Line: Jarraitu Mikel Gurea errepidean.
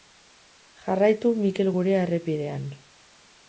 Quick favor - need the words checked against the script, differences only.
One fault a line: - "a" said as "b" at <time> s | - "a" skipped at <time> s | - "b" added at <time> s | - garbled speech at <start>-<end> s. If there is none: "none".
none